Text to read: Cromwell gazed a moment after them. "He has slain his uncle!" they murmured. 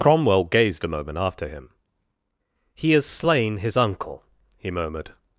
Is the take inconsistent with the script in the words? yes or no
yes